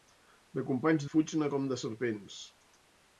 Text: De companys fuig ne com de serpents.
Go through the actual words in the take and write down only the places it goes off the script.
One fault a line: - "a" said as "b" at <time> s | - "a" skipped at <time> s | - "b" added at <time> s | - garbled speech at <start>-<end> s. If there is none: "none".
none